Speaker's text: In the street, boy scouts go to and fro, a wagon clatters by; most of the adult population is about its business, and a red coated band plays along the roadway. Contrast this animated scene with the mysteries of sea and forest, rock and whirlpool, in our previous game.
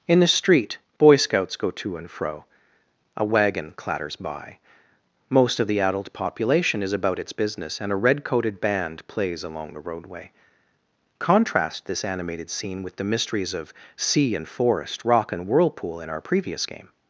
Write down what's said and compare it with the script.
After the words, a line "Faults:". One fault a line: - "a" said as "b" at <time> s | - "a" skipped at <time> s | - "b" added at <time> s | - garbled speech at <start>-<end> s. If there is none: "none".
In the street, boy scouts go to and fro, a wagon clatters by; most of the adult population is about its business, and a red coated band plays along the roadway. Contrast this animated scene with the mysteries of sea and forest, rock and whirlpool, in our previous game.
Faults:
none